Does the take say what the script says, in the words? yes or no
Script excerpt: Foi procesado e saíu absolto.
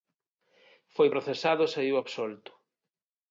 yes